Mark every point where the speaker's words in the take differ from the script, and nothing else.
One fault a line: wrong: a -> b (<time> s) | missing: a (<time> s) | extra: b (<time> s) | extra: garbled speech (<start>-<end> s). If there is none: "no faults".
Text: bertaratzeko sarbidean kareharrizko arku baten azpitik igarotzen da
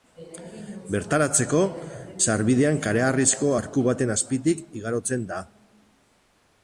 no faults